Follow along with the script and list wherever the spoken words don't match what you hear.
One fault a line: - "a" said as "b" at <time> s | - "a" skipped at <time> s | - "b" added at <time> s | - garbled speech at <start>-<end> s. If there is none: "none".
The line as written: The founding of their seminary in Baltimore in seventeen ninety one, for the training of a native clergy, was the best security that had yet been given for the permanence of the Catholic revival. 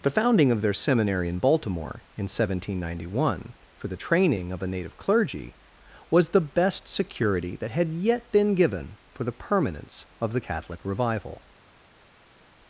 none